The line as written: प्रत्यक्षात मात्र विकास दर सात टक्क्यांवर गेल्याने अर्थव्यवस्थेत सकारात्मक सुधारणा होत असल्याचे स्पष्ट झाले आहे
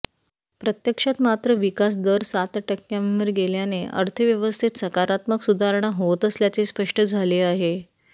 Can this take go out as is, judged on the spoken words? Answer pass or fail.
pass